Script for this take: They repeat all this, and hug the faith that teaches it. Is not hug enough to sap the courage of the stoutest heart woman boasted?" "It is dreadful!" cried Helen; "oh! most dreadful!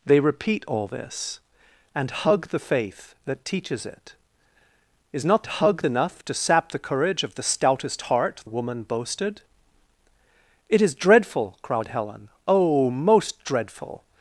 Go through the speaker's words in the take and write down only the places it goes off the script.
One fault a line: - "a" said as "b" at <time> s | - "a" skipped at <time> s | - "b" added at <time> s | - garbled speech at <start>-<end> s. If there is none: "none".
none